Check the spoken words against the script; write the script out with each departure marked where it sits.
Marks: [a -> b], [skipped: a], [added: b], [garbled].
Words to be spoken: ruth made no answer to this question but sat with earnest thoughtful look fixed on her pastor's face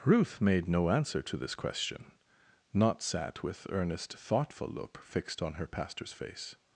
ruth made no answer to this question [but -> not] sat with earnest thoughtful look fixed on her pastor's face